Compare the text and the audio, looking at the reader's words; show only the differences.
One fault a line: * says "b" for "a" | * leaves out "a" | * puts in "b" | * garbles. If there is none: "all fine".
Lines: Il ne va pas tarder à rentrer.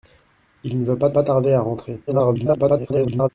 * puts in "pas"
* garbles